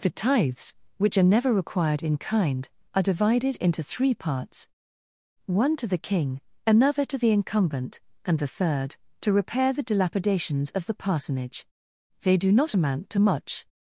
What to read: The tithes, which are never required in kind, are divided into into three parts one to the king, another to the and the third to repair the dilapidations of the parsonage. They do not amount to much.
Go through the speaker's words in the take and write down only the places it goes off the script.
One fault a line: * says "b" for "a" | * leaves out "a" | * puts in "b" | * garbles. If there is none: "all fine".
* leaves out "into"
* puts in "incumbent"